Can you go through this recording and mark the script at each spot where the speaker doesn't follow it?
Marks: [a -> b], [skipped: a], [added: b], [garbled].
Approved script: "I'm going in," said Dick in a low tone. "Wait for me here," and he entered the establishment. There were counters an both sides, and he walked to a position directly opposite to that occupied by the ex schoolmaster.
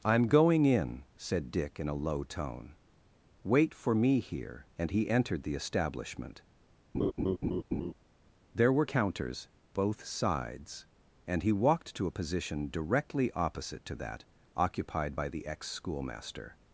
"I'm going in," said Dick in a low tone. "Wait for me here," and he entered the establishment. There were counters [skipped: an] both sides, and he walked to a position directly opposite to that occupied by the ex schoolmaster.